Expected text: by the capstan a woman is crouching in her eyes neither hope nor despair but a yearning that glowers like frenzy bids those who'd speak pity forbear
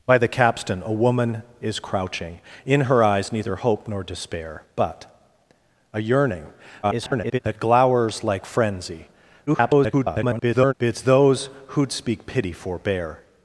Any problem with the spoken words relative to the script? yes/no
yes